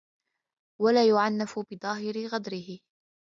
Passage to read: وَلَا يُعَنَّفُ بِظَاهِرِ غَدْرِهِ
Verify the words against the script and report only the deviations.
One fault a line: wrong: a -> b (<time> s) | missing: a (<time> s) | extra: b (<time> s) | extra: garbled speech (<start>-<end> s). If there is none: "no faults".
no faults